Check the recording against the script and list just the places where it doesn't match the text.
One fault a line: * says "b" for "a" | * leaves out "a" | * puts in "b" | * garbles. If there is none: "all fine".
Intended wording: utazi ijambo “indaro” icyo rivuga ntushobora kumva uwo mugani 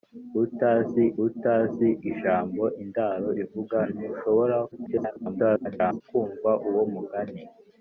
* puts in "utazi"
* leaves out "icyo"
* garbles